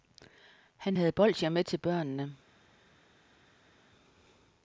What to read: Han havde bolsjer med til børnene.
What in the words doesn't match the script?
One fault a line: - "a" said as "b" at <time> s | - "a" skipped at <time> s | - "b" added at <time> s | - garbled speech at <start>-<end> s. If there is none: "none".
none